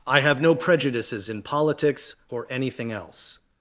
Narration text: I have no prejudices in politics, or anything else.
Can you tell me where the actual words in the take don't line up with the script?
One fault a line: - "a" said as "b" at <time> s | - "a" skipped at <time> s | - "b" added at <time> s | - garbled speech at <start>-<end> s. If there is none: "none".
none